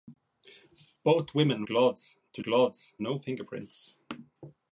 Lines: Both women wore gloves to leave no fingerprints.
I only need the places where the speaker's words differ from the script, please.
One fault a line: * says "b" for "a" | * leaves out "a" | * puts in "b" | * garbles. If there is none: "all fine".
* leaves out "wore"
* says "gloves" for "leave"